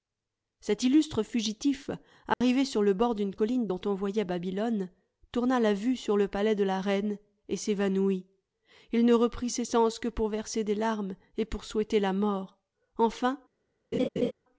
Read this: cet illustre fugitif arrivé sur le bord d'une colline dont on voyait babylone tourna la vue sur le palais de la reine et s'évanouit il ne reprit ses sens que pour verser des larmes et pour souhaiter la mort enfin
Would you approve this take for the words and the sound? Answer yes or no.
no